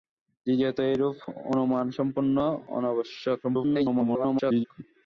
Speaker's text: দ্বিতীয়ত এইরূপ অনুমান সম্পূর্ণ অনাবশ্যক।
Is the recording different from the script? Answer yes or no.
yes